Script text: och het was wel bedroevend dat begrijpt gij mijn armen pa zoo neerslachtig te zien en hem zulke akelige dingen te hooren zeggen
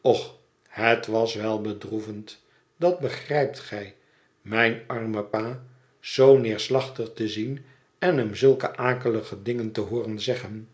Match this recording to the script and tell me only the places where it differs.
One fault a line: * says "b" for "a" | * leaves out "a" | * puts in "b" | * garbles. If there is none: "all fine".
all fine